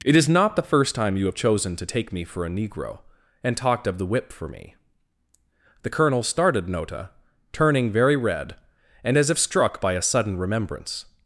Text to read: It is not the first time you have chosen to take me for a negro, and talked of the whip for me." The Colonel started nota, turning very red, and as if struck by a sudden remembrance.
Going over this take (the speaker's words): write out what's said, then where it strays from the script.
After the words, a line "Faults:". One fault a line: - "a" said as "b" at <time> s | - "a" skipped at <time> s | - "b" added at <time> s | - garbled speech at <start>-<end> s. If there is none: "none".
It is not the first time you have chosen to take me for a negro, and talked of the whip for me." The Colonel started nota, turning very red, and as if struck by a sudden remembrance.
Faults:
none